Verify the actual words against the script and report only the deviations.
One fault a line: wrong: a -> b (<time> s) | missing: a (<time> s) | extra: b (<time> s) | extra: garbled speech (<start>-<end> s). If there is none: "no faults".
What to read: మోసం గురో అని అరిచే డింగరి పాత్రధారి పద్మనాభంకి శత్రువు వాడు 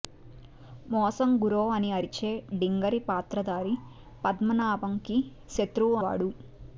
no faults